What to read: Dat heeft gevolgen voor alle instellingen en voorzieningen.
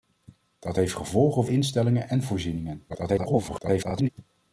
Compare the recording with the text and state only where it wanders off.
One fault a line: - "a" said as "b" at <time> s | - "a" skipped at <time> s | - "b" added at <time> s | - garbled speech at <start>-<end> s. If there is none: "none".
- "voor alle" skipped at 1.4 s
- garbled speech at 2.9-4.1 s